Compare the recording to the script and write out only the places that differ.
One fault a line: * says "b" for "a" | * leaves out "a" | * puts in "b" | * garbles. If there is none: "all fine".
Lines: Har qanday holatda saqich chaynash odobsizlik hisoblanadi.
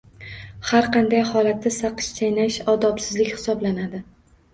all fine